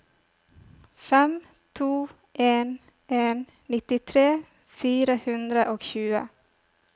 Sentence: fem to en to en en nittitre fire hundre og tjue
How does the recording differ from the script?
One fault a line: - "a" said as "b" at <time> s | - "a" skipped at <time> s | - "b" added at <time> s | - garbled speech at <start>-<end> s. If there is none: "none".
- "to en" skipped at 2.8 s